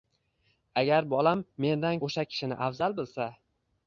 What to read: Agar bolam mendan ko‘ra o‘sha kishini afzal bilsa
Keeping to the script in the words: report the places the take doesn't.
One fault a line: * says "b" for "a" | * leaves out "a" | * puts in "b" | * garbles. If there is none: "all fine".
* leaves out "ko‘ra"